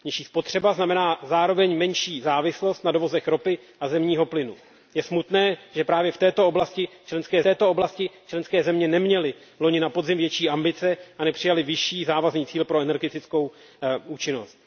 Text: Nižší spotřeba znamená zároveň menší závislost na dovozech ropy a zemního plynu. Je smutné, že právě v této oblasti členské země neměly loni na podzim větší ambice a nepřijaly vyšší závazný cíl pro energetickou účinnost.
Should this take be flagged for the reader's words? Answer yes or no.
yes